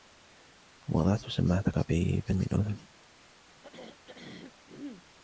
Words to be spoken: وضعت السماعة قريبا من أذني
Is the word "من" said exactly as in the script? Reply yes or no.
yes